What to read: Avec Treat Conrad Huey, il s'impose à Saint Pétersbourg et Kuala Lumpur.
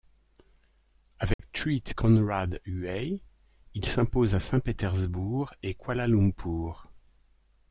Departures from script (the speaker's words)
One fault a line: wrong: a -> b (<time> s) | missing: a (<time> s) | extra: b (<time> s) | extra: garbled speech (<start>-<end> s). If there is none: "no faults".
no faults